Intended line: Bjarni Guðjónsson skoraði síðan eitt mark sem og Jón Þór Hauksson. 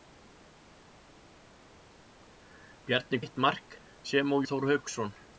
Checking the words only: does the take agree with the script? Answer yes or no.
no